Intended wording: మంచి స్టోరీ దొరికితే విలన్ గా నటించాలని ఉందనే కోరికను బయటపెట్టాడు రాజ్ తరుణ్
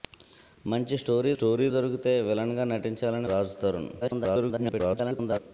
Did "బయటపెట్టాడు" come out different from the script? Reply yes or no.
yes